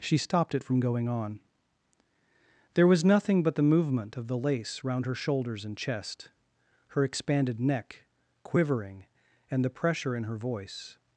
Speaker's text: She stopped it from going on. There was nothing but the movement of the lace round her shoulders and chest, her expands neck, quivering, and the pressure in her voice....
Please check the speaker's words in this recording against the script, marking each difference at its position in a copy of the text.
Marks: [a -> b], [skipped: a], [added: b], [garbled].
She stopped it from going on. There was nothing but the movement of the lace round her shoulders and chest, her [expands -> expanded] neck, quivering, and the pressure in her voice....